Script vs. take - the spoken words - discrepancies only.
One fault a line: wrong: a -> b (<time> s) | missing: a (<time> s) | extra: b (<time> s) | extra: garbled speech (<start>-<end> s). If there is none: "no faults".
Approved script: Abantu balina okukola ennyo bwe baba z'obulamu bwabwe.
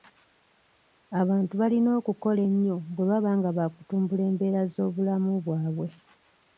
extra: nga baakutumbula embeera (3.4 s)